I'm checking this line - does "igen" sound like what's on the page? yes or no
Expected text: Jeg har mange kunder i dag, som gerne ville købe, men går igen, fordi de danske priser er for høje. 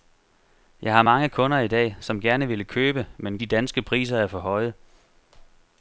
no